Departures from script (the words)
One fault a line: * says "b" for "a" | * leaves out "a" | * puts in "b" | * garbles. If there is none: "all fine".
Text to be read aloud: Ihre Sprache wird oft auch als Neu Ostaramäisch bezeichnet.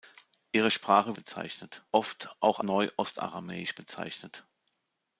* says "bezeichnet" for "wird"
* leaves out "als"